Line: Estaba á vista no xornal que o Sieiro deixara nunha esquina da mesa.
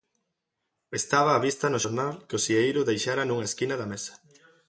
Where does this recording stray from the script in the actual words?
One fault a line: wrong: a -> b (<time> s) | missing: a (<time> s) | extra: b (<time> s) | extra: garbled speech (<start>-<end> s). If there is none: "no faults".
no faults